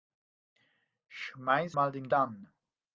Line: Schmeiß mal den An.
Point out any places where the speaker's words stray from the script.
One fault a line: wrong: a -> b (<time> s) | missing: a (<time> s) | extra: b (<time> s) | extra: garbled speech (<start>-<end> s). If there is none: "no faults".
no faults